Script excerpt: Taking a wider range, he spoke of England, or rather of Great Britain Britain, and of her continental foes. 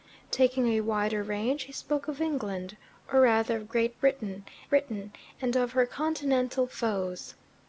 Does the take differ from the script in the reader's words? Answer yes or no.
no